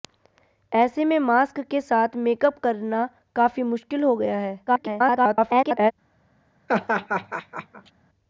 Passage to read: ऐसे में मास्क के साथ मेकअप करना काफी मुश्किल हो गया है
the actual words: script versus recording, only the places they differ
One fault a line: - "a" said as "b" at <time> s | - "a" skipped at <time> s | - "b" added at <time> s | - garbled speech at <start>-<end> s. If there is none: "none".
- garbled speech at 4.7-5.9 s